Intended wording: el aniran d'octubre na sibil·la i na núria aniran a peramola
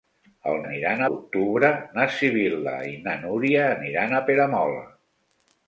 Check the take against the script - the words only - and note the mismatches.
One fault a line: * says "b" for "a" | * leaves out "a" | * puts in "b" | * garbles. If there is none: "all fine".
all fine